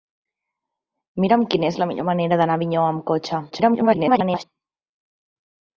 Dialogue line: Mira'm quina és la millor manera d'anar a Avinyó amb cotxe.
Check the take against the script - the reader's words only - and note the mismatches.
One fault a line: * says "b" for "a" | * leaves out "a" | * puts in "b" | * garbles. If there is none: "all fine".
* garbles